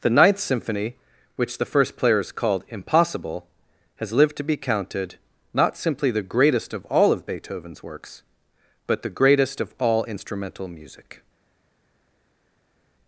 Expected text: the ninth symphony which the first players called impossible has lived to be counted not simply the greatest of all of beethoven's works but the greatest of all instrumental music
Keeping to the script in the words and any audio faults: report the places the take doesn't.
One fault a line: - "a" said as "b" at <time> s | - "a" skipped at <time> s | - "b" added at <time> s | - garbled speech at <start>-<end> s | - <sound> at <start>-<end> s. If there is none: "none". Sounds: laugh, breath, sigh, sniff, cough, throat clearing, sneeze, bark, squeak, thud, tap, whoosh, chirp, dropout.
none